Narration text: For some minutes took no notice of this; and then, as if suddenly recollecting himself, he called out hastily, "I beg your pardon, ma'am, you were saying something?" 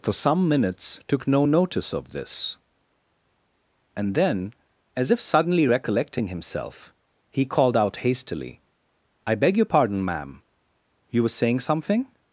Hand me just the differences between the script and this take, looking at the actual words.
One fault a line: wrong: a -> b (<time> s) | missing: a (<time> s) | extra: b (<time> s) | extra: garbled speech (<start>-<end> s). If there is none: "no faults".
no faults